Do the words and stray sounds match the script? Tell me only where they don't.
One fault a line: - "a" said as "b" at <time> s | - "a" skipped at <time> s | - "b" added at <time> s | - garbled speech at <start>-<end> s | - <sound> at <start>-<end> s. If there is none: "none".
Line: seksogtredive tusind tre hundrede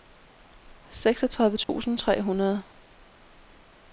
- dropout at 1.6-1.7 s